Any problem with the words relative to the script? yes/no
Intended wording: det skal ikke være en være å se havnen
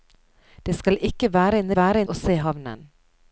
no